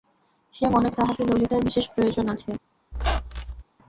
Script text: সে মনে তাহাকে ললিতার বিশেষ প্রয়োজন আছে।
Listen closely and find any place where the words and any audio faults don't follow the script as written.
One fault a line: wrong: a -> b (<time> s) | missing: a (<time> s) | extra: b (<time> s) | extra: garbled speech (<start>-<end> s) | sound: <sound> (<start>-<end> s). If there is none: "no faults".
sound: squeak (2.9-3.6 s)